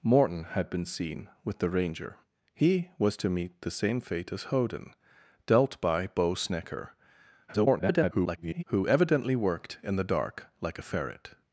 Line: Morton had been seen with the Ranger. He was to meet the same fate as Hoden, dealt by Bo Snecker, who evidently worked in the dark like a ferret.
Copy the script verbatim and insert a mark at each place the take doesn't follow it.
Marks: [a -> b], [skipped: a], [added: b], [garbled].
Morton had been seen with the Ranger. He was to meet the same fate as Hoden, dealt by Bo Snecker, [garbled] who evidently worked in the dark like a ferret.